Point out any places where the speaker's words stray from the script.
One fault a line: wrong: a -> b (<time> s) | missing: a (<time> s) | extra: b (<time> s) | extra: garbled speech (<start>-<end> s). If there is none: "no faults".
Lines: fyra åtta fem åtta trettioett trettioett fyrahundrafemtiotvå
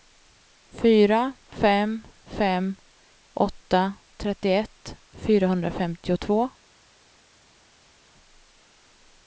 wrong: åtta -> fem (1.5 s)
missing: trettioett (5.0 s)